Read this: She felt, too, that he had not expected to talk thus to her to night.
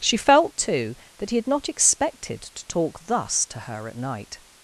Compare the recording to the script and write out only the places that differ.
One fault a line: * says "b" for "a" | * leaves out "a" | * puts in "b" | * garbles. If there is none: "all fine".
* says "at" for "to"